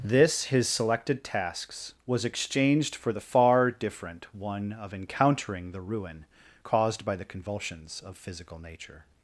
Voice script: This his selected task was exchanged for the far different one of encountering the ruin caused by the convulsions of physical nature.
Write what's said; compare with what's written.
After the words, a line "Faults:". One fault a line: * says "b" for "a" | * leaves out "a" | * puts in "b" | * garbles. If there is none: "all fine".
This his selected tasks was exchanged for the far different one of encountering the ruin caused by the convulsions of physical nature.
Faults:
* says "tasks" for "task"